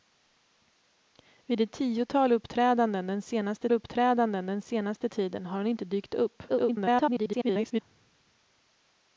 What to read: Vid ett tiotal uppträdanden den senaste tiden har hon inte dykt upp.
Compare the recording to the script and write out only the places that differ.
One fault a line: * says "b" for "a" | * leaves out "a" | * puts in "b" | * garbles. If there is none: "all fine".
* puts in "uppträdanden den senaste"
* garbles